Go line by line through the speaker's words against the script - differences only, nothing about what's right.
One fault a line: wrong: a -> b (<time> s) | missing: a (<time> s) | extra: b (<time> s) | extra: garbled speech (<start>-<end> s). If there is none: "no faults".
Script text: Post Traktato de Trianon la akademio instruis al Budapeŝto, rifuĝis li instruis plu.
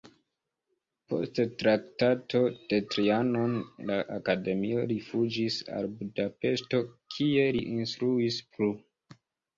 wrong: instruis -> rifuĝis (4.9 s)
wrong: rifuĝis -> kie (7.2 s)